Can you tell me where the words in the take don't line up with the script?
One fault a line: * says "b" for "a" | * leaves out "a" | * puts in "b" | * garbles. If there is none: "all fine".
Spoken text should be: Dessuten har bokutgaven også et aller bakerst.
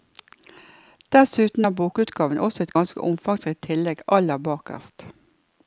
* puts in "ganske omfangsrikt tillegg"